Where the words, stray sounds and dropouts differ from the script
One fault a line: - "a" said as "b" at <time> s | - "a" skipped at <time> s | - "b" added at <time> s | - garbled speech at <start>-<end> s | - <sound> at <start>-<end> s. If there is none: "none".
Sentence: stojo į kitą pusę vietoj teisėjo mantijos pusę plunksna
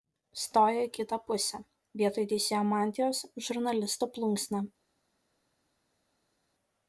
- "pusę" said as "žurnalisto" at 3.5 s